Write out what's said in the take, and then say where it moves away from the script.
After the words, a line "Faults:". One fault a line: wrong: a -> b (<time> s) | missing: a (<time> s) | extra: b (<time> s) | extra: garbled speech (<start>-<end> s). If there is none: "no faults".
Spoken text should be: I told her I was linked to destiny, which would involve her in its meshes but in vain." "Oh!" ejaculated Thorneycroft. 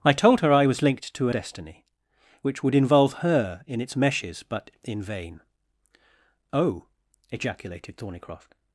I told her I was linked to destiny, which would involve her in its meshes but in vain." "Oh!" ejaculated Thorneycroft.
Faults:
no faults